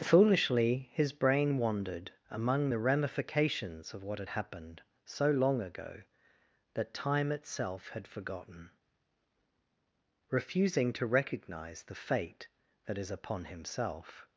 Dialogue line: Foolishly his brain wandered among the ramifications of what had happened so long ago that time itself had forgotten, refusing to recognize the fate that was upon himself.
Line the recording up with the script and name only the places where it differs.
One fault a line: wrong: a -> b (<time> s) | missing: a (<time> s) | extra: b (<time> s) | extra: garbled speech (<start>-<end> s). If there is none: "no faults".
wrong: was -> is (13.0 s)